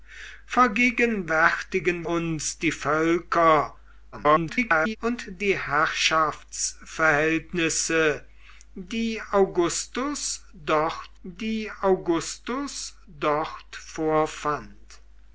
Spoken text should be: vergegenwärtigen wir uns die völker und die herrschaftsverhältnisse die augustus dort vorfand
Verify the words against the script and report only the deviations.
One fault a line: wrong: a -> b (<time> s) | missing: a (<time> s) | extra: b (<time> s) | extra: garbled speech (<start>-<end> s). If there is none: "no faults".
missing: wir (2.1 s)
extra: garbled speech (4.1-5.0 s)
extra: die augustus dort (11.2 s)